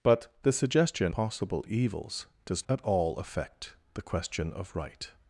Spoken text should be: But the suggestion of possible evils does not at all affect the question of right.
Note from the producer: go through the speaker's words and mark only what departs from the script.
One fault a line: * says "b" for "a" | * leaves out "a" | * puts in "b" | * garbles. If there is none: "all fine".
* leaves out "of"
* leaves out "not"